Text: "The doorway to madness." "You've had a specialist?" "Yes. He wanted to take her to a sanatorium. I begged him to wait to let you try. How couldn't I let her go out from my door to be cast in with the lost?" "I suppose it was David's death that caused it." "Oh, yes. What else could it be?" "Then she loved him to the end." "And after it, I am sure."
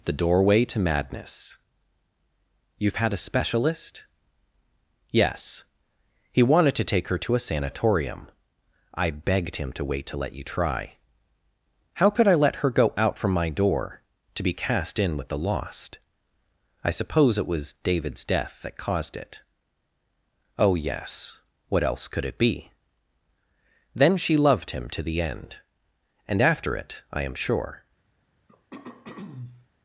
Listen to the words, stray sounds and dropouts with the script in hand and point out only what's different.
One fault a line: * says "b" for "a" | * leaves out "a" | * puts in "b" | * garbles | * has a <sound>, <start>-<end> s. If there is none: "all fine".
* says "could" for "couldn't"
* has a throat clearing, 28.5-29.7 s